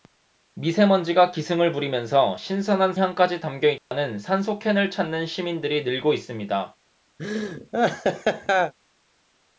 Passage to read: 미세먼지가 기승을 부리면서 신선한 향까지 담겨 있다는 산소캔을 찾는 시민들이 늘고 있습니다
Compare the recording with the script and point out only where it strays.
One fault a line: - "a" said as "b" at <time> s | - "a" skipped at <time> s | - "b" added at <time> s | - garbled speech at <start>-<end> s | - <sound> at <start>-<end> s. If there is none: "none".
- dropout at 3.8-3.9 s
- laugh at 7.2-8.7 s